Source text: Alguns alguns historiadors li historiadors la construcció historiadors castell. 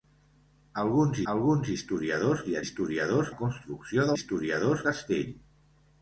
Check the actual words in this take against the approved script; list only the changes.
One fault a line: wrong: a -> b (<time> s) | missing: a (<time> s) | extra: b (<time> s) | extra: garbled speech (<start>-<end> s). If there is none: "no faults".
no faults